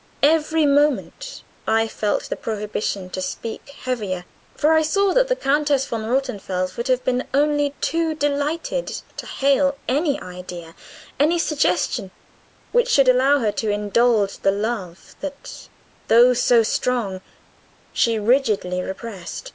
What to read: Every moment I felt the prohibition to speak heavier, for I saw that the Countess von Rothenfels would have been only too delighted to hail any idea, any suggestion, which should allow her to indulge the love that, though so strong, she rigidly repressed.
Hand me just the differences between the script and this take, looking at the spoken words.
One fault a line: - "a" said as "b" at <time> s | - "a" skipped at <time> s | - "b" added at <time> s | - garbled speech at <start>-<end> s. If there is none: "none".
none